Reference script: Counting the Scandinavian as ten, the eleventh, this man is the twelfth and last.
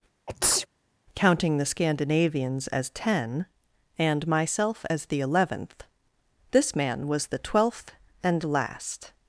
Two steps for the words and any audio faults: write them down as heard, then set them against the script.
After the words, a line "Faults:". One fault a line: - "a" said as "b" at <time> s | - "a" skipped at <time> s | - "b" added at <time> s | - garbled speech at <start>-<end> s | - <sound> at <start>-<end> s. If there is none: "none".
Counting the Scandinavians as ten, and myself as the eleventh, this man was the twelfth and last.
Faults:
- sneeze at 0.3-0.7 s
- "Scandinavian" said as "Scandinavians" at 1.7 s
- "and myself as" added at 4.0 s
- "is" said as "was" at 7.1 s